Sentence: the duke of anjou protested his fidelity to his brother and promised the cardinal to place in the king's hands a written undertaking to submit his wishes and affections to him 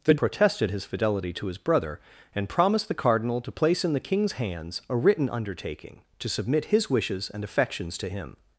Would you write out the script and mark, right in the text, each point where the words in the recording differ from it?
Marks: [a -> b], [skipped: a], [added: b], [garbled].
the [skipped: duke of anjou] protested his fidelity to his brother and promised the cardinal to place in the king's hands a written undertaking to submit his wishes and affections to him